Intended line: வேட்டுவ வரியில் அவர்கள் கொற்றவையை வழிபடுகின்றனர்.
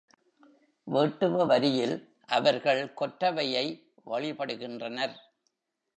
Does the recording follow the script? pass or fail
pass